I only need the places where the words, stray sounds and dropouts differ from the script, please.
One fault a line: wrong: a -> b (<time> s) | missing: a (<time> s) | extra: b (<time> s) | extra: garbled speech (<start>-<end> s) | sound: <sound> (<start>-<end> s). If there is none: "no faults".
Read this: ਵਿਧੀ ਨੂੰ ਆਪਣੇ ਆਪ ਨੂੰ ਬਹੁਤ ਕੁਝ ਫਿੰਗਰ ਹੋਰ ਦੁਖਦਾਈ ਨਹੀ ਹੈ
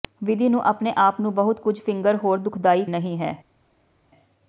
no faults